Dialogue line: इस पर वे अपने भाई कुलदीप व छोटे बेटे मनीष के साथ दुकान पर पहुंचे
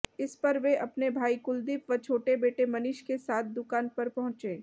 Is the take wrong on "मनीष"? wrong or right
right